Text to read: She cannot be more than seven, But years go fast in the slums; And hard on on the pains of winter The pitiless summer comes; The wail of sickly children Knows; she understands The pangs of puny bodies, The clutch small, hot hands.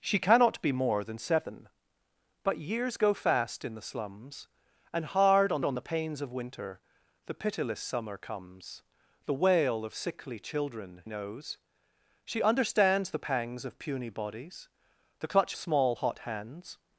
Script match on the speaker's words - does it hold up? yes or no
yes